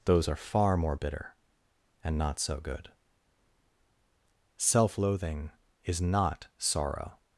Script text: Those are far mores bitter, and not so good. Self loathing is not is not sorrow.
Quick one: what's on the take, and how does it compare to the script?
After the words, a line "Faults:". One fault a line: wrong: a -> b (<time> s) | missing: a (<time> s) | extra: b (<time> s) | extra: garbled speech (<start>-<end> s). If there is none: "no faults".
Those are far more bitter, and not so good. Self loathing is not sorrow.
Faults:
wrong: mores -> more (0.8 s)
missing: is not (6.5 s)